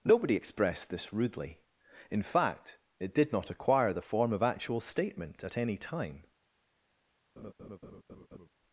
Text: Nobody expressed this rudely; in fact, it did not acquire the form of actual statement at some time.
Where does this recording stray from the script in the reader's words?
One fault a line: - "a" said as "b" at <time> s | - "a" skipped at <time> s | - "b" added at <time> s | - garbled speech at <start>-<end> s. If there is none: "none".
- "some" said as "any" at 5.6 s